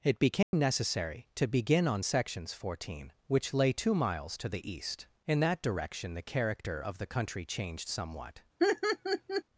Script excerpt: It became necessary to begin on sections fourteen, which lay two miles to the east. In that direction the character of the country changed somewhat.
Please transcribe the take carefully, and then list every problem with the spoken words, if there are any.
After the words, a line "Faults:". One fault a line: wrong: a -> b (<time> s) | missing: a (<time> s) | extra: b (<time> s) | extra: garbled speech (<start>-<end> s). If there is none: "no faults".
It became necessary to begin on sections fourteen, which lay two miles to the east. In that direction the character of the country changed somewhat.
Faults:
no faults